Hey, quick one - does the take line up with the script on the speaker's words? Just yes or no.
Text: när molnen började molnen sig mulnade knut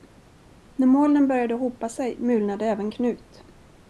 no